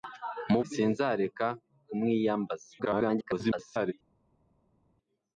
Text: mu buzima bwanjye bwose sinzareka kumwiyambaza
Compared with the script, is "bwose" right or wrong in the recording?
wrong